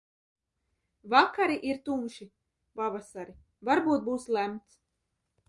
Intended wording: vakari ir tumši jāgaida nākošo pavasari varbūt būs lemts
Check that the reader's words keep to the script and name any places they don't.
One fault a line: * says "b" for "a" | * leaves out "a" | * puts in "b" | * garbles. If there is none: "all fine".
* leaves out "jāgaida nākošo"